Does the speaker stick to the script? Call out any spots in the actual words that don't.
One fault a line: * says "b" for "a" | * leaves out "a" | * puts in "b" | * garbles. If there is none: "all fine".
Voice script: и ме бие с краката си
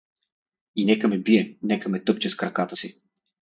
* puts in "нека"
* puts in "нека ме тъпче"